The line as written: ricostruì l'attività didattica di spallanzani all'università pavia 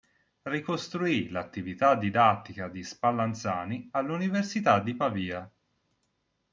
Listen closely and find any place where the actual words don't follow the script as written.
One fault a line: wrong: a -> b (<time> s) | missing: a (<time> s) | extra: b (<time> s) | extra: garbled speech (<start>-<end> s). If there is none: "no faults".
extra: di (4.8 s)